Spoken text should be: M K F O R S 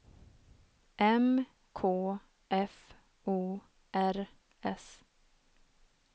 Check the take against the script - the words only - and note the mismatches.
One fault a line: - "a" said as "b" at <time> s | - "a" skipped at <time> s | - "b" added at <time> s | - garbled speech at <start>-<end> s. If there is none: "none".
none